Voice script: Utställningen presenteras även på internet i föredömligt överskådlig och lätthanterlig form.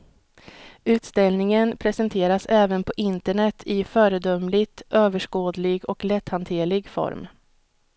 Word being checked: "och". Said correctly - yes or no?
yes